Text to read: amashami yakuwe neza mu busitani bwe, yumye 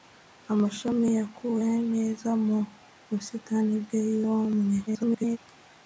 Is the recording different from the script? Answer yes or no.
yes